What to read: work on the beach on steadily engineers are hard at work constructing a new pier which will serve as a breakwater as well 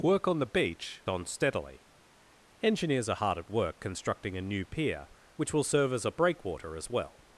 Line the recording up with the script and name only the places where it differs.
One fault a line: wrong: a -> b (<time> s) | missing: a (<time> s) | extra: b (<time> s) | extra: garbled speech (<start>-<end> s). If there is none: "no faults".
no faults